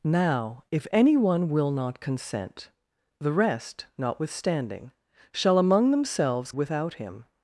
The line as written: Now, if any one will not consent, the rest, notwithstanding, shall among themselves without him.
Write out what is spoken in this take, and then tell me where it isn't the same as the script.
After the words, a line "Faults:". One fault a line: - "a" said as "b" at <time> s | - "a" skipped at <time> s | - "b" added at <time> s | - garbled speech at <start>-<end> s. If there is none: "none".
Now, if any one will not consent, the rest, notwithstanding, shall among themselves without him.
Faults:
none